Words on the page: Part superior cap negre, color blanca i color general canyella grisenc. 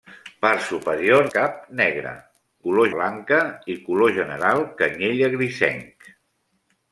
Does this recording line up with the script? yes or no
yes